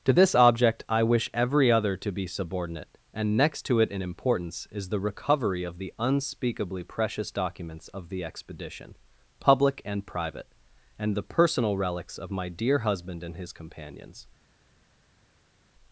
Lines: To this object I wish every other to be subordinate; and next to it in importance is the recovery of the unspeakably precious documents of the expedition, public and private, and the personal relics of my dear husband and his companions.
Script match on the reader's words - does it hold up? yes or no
yes